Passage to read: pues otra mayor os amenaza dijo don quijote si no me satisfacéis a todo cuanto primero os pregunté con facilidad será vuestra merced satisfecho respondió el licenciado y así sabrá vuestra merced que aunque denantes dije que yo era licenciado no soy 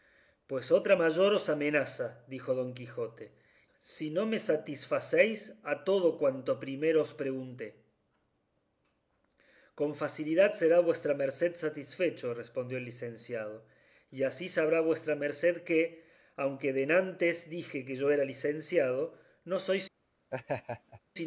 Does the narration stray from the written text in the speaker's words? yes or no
no